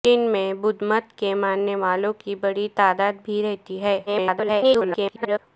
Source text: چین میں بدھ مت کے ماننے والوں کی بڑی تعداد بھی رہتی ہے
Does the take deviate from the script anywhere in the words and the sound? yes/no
yes